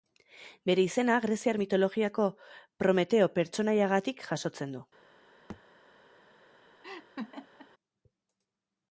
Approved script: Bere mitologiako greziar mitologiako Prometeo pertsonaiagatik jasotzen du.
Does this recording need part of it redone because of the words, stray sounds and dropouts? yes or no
yes